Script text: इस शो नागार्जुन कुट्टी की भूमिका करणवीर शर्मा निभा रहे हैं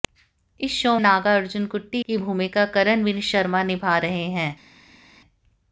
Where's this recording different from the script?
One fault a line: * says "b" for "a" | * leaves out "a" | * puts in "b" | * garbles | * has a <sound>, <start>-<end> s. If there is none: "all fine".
all fine